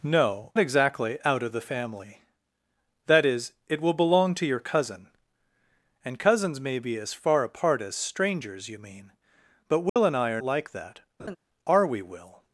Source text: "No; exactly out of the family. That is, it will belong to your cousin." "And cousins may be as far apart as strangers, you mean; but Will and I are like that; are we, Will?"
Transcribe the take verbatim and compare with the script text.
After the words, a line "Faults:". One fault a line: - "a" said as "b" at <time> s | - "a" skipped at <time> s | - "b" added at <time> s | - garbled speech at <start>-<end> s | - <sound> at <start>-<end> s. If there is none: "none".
"No; exactly out of the family. That is, it will belong to your cousin." "And cousins may be as far apart as strangers, you mean; but Will and I are like that; are we, Will?"
Faults:
- dropout at 9.9-10.0 s
- laugh at 11.2-11.4 s